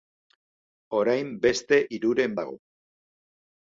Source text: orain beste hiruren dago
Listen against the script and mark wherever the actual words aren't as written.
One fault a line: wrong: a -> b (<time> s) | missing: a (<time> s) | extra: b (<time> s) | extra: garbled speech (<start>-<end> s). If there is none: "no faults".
no faults